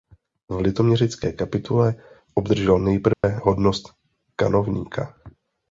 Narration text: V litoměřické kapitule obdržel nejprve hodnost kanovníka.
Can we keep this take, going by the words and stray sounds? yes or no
no